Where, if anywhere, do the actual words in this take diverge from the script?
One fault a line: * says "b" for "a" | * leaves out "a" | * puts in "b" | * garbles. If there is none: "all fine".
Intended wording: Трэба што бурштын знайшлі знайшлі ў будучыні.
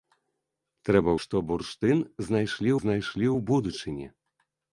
all fine